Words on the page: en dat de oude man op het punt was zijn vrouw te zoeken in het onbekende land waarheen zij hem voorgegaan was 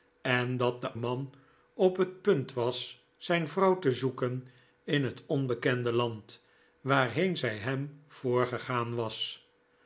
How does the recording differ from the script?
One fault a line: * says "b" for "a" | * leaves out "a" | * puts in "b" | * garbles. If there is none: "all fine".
* leaves out "oude"